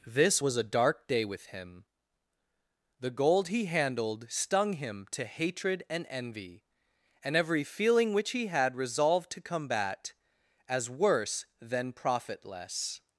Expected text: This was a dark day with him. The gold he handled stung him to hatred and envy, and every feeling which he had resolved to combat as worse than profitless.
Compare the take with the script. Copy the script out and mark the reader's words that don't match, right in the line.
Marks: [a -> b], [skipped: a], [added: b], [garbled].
This was a dark day with him. The gold he handled stung him to hatred and envy, and every feeling which he had resolved to combat as worse than profitless.